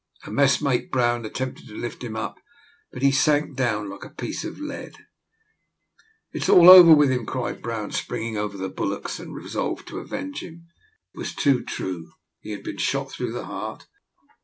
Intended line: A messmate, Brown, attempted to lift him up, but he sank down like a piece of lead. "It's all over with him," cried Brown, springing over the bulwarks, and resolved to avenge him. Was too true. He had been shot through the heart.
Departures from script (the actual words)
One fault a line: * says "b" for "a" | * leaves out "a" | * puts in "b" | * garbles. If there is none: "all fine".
all fine